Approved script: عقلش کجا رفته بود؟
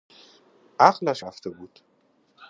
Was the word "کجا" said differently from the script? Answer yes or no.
yes